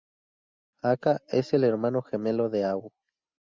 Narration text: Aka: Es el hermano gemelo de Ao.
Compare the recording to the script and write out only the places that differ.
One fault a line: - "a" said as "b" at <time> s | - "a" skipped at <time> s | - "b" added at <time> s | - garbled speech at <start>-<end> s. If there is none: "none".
none